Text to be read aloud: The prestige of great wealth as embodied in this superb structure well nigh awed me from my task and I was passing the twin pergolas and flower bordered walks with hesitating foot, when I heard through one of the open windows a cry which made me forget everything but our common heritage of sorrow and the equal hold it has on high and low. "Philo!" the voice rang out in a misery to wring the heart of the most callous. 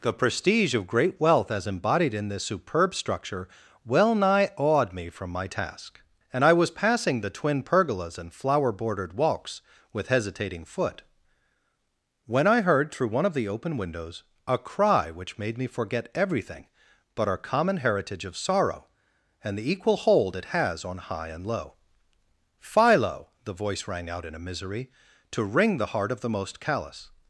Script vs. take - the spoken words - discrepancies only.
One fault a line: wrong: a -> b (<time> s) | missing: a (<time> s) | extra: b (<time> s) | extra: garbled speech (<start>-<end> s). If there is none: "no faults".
no faults